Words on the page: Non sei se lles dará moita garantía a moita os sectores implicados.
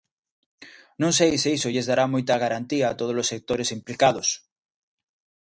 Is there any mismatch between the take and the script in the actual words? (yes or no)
yes